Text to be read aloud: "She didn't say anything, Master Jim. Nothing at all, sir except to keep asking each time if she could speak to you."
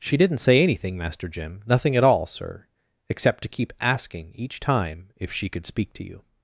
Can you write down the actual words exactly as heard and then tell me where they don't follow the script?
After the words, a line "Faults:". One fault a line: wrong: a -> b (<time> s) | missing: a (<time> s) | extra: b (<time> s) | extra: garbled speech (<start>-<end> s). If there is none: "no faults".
"She didn't say anything, Master Jim. Nothing at all, sir except to keep asking each time if she could speak to you."
Faults:
no faults